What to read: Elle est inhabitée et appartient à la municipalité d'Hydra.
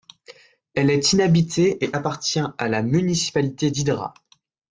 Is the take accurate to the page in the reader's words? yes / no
yes